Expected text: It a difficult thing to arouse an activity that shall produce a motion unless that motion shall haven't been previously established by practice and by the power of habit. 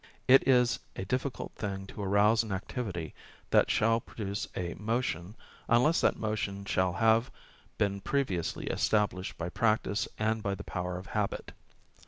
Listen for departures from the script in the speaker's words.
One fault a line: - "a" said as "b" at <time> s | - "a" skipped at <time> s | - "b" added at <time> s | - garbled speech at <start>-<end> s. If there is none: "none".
- "is" added at 0.5 s
- "haven't" said as "have" at 6.9 s